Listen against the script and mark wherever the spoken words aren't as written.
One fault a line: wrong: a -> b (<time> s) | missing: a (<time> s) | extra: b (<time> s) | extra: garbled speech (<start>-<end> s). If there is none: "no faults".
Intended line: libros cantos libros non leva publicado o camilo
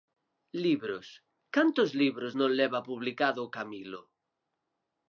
no faults